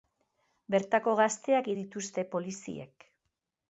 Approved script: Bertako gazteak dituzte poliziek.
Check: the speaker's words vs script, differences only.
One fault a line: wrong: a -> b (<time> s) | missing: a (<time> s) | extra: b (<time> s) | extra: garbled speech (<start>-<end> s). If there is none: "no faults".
no faults